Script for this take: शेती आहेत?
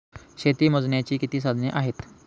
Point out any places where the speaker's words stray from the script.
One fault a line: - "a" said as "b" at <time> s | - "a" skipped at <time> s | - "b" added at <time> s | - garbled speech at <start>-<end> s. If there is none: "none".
- "मोजण्याची किती साधने" added at 0.7 s